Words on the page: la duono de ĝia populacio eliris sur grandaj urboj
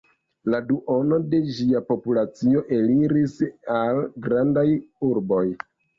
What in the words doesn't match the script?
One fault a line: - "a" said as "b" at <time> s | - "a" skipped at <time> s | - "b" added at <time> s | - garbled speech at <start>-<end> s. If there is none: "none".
- "sur" said as "al" at 3.8 s